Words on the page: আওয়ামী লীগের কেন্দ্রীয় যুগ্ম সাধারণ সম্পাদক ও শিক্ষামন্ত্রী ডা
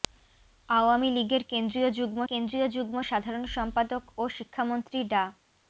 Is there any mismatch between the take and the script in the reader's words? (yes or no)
yes